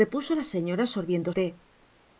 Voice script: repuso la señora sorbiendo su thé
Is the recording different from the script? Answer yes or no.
yes